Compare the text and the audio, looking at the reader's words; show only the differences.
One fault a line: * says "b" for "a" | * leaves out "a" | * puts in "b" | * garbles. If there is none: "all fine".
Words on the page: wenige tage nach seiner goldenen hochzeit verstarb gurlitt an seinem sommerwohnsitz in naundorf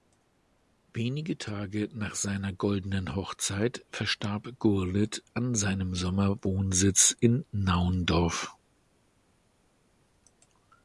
all fine